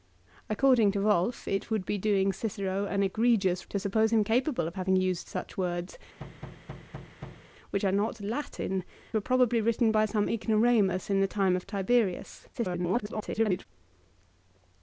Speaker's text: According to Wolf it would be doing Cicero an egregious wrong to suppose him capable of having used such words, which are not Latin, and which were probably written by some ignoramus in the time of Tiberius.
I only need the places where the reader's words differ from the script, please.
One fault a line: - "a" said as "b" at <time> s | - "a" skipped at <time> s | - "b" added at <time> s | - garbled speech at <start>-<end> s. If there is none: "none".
- "wrong" skipped at 3.7 s
- "and which" skipped at 8.8 s
- garbled speech at 12.5-13.7 s